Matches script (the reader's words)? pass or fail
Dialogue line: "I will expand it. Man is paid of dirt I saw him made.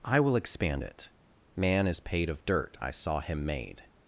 pass